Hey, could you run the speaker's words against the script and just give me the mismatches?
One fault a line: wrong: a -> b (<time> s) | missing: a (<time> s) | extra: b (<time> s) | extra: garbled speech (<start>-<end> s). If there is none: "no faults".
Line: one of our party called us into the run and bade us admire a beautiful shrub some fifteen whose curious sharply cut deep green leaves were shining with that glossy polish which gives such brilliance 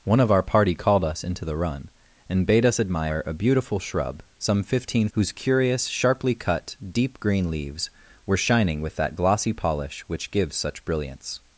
no faults